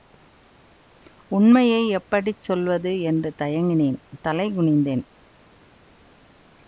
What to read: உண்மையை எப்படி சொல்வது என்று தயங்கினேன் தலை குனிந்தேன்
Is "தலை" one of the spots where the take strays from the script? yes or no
no